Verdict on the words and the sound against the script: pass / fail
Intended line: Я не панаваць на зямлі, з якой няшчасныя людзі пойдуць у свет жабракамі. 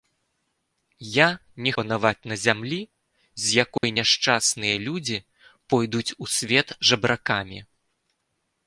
fail